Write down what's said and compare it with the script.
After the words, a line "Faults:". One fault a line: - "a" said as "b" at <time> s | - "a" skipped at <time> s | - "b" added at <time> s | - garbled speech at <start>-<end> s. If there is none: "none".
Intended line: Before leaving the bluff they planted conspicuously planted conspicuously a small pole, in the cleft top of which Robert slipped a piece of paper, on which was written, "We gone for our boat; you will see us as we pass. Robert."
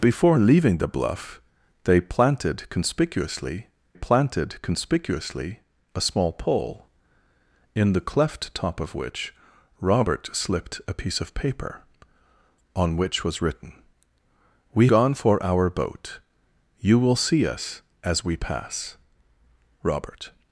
Before leaving the bluff they planted conspicuously planted conspicuously a small pole, in the cleft top of which Robert slipped a piece of paper, on which was written, "We gone for our boat; you will see us as we pass. Robert."
Faults:
none